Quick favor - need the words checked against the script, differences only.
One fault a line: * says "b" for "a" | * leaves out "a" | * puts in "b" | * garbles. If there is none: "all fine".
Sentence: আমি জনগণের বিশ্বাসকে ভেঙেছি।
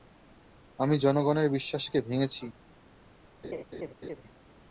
all fine